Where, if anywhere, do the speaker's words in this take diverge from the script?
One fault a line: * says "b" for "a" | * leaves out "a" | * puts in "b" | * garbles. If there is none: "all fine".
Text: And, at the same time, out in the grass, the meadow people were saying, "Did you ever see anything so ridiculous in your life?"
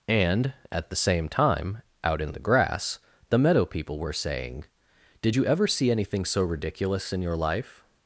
all fine